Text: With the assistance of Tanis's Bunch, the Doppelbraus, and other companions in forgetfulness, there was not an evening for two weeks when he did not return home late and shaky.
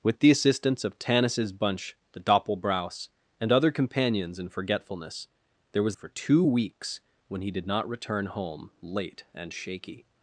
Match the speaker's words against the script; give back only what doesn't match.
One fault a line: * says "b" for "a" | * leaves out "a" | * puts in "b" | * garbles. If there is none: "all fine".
* leaves out "not an evening"